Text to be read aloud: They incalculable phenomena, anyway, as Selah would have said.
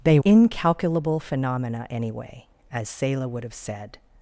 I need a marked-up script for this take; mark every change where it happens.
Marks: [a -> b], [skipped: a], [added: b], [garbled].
They incalculable phenomena, anyway, as Selah would have said.